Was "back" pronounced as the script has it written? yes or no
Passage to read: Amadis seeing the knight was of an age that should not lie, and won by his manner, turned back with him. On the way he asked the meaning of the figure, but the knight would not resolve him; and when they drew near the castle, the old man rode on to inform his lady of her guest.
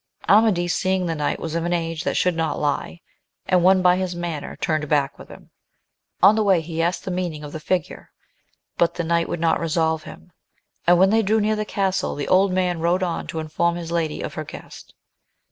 yes